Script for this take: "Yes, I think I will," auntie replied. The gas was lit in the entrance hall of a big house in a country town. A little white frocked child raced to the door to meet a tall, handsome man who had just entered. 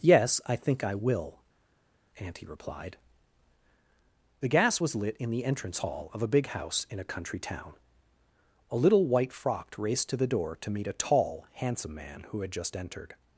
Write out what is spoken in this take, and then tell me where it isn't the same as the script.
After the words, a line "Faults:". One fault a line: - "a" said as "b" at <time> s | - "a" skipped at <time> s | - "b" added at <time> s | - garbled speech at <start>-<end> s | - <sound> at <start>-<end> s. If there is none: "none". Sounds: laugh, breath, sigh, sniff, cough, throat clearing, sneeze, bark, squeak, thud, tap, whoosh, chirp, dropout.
"Yes, I think I will," auntie replied. The gas was lit in the entrance hall of a big house in a country town. A little white frocked raced to the door to meet a tall, handsome man who had just entered.
Faults:
- "child" skipped at 9.8 s